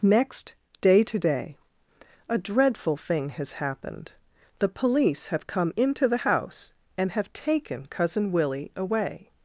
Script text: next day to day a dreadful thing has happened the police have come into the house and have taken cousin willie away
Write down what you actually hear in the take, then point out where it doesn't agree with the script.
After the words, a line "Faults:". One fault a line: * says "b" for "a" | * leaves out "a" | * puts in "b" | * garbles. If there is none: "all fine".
next day to day a dreadful thing has happened the police have come into the house and have taken cousin willie away
Faults:
all fine